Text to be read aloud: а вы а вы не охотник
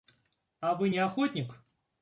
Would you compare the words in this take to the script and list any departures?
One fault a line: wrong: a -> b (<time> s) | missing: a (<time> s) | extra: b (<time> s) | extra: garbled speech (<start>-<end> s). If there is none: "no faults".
missing: а вы (0.9 s)